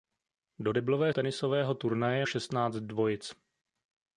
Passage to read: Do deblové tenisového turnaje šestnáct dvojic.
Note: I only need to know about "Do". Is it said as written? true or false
true